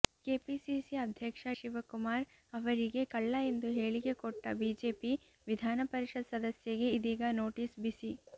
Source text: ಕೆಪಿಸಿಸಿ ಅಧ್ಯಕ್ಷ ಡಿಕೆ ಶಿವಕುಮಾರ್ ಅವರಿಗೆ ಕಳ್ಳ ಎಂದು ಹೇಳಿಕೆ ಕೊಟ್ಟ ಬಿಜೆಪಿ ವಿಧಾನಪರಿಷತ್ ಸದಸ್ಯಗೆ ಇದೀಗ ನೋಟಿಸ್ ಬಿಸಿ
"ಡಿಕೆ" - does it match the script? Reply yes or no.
no